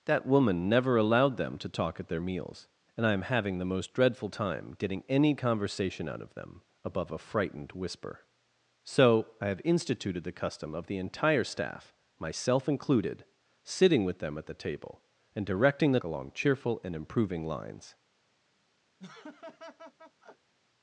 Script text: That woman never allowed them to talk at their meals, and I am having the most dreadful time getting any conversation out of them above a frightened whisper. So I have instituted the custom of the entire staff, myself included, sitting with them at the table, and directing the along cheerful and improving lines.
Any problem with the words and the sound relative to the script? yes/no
yes